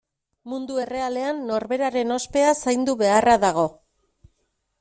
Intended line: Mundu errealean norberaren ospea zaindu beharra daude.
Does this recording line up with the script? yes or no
no